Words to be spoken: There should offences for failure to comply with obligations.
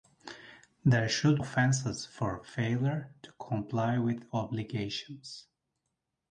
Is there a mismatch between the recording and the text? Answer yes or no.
no